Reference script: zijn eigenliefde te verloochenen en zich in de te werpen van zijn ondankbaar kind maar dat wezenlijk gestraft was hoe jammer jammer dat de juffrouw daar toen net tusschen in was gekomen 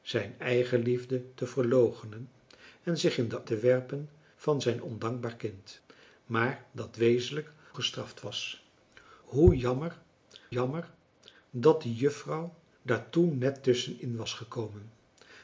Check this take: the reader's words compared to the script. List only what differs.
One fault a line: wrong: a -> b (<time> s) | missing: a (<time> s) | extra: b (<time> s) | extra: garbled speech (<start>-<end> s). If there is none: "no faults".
no faults